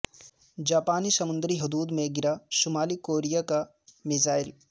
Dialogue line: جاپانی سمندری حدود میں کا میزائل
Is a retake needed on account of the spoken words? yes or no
yes